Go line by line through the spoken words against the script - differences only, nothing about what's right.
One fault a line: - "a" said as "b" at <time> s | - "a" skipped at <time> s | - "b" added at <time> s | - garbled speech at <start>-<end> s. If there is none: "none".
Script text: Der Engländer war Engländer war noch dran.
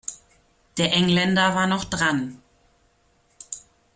- "Engländer war" skipped at 1.7 s